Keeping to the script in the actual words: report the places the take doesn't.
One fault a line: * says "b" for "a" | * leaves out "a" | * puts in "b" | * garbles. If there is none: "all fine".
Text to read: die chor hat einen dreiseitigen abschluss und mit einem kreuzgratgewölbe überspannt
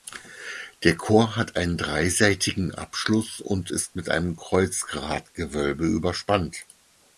* says "der" for "die"
* puts in "ist"